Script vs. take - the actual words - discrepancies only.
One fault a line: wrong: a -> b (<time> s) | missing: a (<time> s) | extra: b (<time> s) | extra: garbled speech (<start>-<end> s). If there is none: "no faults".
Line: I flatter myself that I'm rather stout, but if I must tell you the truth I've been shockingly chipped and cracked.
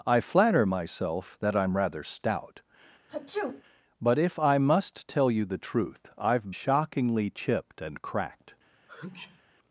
missing: been (6.5 s)